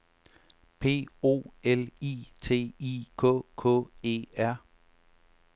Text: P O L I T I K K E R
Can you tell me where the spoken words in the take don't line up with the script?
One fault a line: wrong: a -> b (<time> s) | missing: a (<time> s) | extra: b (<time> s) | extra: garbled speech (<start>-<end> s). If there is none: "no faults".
no faults